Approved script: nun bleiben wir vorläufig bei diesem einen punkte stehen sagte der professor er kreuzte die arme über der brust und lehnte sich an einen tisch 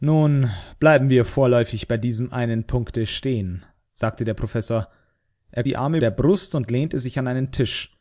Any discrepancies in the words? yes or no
yes